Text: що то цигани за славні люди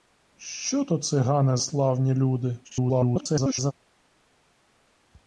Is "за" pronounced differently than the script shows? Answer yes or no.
yes